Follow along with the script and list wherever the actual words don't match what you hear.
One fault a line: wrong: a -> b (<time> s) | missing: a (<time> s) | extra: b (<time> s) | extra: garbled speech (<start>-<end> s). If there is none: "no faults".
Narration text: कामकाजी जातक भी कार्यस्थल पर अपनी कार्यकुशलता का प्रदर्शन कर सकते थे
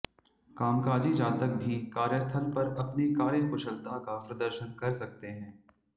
wrong: थे -> हैं (5.3 s)